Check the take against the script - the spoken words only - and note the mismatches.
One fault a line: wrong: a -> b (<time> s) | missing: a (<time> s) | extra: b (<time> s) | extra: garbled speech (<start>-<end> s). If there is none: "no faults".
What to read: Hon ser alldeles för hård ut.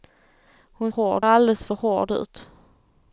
wrong: ser -> hård (0.9 s)